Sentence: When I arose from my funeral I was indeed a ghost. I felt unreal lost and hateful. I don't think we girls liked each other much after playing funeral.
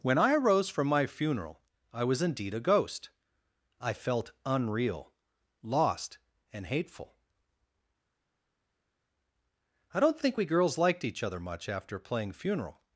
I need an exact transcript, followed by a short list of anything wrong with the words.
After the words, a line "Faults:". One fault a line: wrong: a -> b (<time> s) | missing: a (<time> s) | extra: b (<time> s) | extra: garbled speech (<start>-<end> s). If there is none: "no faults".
When I arose from my funeral I was indeed a ghost. I felt unreal lost and hateful. I don't think we girls liked each other much after playing funeral.
Faults:
no faults